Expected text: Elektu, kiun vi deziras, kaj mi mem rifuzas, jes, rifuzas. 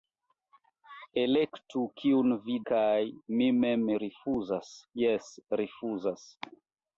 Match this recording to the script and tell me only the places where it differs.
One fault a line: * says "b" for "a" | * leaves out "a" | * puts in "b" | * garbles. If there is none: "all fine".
* leaves out "deziras"